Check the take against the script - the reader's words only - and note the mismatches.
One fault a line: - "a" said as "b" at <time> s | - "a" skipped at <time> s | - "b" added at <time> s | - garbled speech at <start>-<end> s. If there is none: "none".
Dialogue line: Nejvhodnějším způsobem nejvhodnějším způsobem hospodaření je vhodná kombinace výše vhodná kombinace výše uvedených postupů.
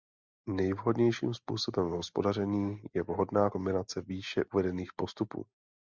- "nejvhodnějším způsobem" skipped at 1.9 s
- "vhodná kombinace výše" skipped at 4.4 s